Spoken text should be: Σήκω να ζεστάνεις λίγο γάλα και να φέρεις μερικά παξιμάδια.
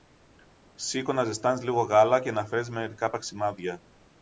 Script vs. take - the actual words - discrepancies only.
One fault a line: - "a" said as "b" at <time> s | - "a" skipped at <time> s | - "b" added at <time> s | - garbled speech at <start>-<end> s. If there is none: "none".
none